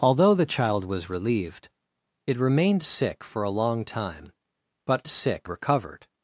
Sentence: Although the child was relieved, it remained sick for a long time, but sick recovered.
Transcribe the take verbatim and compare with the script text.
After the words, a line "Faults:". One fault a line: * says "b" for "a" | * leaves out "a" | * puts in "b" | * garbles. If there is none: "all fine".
Although the child was relieved, it remained sick for a long time, but sick recovered.
Faults:
all fine